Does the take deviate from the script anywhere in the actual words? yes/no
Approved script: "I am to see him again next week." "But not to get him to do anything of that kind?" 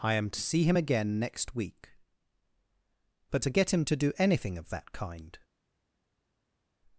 yes